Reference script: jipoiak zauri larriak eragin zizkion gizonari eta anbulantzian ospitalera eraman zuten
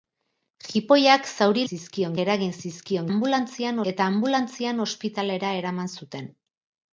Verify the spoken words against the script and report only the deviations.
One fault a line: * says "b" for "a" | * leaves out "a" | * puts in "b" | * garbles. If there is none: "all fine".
* says "zizkion" for "larriak"
* says "anbulantzian" for "gizonari"